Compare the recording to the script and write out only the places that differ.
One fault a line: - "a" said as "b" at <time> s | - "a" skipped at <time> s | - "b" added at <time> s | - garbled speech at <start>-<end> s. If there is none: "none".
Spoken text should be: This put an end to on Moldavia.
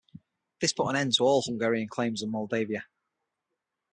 - "all Hungarian claims" added at 1.2 s